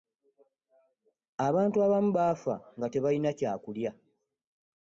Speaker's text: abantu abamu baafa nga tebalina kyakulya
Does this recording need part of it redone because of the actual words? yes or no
no